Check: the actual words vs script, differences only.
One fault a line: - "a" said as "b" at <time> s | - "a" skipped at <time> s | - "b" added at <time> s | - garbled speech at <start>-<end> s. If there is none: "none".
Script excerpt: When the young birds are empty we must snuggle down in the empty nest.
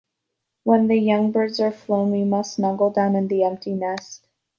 - "empty" said as "flown" at 1.7 s